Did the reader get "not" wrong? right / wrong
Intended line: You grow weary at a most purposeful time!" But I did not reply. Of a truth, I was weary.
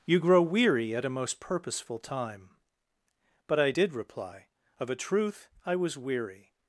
wrong